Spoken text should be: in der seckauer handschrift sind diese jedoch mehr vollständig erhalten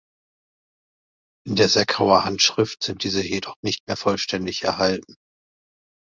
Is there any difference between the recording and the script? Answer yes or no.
yes